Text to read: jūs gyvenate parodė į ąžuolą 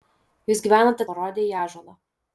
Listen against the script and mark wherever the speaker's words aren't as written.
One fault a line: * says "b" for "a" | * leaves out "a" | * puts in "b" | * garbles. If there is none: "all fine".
all fine